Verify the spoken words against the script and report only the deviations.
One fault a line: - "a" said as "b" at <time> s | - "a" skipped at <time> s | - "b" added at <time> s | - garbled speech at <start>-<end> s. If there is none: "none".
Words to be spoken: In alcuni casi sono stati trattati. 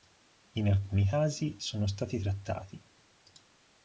none